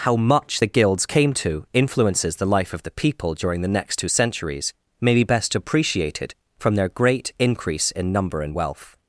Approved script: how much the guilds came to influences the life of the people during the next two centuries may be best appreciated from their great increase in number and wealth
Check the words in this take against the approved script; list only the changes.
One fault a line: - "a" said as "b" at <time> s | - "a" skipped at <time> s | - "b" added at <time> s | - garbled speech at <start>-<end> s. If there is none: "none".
none